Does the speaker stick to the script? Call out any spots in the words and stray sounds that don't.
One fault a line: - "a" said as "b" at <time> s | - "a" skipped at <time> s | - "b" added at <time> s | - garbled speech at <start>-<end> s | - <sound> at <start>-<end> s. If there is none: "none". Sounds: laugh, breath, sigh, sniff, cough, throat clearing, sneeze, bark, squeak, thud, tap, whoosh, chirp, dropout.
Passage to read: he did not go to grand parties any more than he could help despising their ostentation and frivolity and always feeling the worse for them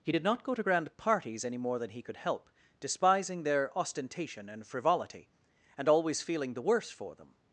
none